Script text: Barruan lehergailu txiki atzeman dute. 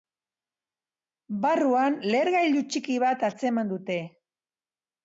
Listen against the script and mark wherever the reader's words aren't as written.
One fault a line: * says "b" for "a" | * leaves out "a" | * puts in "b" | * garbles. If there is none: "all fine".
* puts in "bat"